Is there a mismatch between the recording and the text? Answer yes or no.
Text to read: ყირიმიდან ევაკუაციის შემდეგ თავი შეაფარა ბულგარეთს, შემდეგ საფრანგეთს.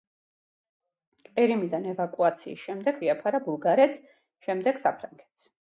yes